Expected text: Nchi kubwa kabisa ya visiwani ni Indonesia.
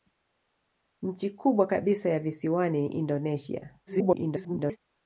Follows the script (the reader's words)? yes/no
no